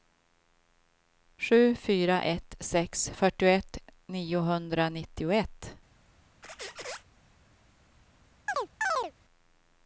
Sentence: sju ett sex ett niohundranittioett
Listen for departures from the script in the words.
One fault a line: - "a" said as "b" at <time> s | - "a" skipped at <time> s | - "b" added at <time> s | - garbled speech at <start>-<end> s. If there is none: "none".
- "fyra" added at 1.8 s
- "ett" said as "fyrtioett" at 3.1 s